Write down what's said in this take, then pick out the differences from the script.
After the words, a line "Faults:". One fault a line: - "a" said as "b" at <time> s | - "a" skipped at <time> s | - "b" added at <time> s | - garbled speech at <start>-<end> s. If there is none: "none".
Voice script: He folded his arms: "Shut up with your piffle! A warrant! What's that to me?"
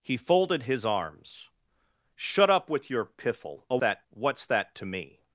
He folded his arms: "Shut up with your piffle! A that! What's that to me?"
Faults:
- "warrant" said as "that" at 3.8 s